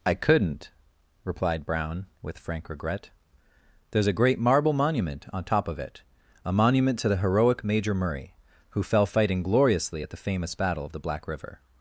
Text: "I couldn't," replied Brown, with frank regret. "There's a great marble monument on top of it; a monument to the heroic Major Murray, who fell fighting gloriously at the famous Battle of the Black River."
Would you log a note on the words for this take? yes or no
no